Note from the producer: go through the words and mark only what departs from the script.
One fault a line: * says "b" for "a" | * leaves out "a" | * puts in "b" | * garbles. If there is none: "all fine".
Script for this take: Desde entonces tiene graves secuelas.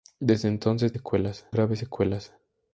* says "secuelas" for "tiene"